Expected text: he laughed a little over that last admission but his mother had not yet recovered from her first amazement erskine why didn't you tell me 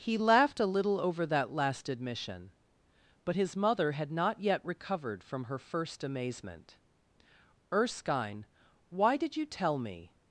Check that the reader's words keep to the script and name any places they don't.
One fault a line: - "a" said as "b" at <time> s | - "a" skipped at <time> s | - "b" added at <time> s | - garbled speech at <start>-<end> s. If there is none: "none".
- "didn't" said as "did" at 9.2 s